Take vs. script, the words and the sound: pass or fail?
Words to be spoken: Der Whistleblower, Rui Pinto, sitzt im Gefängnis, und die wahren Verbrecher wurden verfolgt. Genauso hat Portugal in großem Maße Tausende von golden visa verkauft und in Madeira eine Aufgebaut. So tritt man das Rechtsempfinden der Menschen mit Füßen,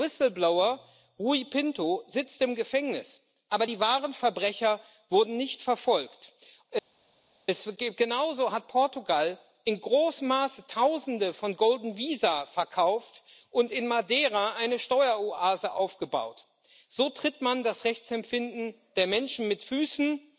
fail